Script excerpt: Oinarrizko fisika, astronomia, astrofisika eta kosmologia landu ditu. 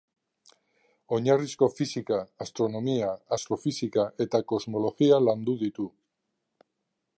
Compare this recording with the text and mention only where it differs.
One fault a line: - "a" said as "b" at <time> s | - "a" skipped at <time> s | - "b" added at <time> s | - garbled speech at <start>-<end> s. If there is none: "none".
none